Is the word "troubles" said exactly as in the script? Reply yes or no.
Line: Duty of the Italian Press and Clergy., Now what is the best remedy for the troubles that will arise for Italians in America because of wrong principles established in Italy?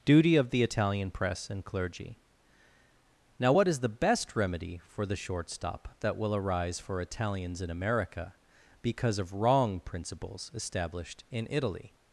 no